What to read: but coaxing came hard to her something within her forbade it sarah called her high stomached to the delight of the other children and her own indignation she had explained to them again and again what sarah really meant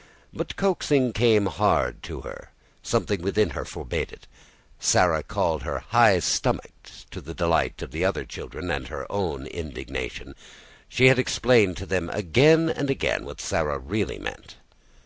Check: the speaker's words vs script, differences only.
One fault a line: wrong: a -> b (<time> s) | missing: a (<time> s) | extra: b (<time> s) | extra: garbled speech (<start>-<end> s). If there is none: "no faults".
no faults